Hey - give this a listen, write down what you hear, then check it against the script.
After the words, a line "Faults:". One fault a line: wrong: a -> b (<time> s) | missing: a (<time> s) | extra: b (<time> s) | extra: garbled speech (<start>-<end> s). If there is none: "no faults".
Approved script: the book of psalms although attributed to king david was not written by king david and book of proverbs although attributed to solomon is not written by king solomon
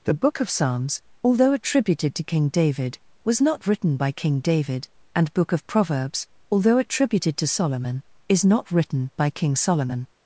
the book of psalms although attributed to king david was not written by king david and book of proverbs although attributed to solomon is not written by king solomon
Faults:
no faults